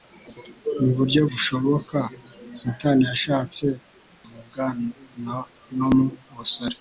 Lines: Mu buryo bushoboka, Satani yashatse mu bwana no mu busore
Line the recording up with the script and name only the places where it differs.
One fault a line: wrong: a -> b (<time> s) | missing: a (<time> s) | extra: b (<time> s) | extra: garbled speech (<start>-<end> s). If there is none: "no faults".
no faults